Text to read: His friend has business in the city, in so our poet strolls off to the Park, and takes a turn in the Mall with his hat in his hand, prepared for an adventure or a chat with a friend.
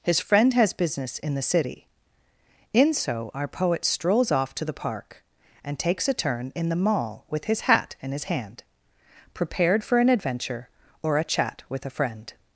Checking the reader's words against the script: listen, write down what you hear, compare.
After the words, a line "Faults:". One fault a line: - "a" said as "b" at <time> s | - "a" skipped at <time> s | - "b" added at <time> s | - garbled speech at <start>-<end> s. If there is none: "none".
His friend has business in the city, in so our poet strolls off to the Park, and takes a turn in the Mall with his hat in his hand, prepared for an adventure or a chat with a friend.
Faults:
none